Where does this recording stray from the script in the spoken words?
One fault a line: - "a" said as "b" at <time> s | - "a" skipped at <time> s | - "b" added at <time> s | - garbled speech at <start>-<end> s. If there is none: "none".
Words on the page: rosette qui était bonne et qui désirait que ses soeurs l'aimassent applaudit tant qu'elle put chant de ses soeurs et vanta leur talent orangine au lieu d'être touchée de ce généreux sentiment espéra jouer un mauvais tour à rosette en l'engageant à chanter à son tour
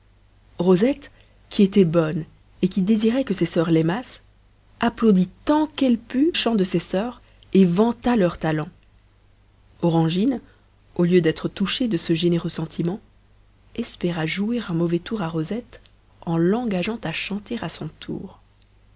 none